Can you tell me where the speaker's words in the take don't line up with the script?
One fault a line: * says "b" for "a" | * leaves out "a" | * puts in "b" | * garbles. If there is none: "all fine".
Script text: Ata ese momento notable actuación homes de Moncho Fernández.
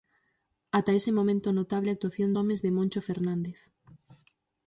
all fine